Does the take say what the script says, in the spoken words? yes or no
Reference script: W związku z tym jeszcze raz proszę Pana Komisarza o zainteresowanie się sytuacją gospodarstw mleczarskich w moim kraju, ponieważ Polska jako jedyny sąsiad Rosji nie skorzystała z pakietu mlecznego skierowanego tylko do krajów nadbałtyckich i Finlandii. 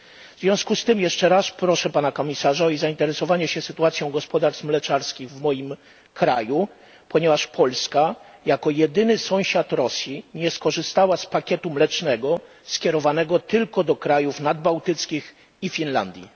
yes